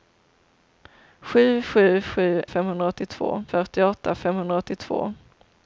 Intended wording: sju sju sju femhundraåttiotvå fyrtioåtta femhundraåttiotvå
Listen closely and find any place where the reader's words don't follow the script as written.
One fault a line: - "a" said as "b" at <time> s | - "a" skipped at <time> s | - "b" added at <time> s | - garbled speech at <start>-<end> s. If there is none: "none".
none